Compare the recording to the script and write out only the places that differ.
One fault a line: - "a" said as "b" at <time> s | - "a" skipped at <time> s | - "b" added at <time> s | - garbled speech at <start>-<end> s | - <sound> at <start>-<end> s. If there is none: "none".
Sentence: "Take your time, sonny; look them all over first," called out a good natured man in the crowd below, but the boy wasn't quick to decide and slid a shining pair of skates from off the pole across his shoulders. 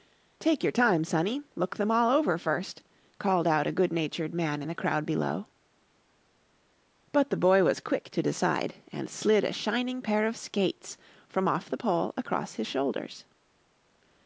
- "wasn't" said as "was" at 7.6 s